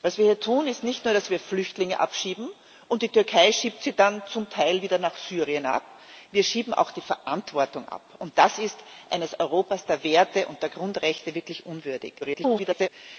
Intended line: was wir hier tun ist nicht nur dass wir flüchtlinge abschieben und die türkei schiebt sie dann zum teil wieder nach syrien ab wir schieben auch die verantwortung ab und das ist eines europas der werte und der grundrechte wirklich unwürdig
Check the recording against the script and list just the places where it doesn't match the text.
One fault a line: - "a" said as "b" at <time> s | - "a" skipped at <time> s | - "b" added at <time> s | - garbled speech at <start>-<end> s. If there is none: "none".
- garbled speech at 12.2-12.9 s